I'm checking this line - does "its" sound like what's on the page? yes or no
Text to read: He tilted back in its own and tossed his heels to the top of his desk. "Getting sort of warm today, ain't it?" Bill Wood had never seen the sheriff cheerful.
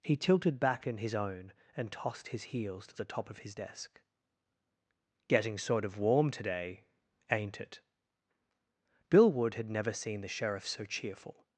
no